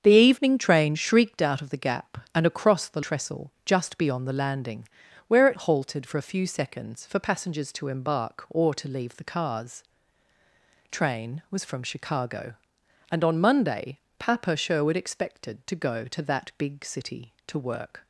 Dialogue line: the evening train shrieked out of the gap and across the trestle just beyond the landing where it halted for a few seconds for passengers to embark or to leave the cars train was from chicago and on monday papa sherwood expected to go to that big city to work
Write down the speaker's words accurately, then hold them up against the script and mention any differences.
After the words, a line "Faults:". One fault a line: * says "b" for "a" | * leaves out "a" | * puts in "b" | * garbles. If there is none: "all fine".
the evening train shrieked out of the gap and across the trestle just beyond the landing where it halted for a few seconds for passengers to embark or to leave the cars train was from chicago and on monday papa sherwood expected to go to that big city to work
Faults:
all fine